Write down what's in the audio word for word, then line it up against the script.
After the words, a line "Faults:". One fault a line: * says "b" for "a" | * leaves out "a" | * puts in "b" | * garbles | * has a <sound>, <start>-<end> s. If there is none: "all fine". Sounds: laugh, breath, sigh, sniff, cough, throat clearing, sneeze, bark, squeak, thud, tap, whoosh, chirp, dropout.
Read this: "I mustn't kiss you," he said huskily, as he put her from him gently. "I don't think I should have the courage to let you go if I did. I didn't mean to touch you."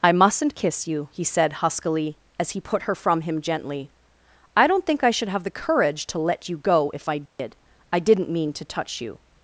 "I mustn't kiss you," he said huskily, as he put her from him gently. "I don't think I should have the courage to let you go if I did. I didn't mean to touch you."
Faults:
* has a dropout, 7.3-7.4 s